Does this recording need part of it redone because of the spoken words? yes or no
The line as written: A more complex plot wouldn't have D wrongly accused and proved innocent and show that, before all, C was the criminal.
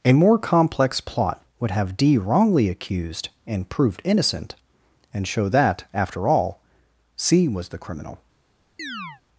yes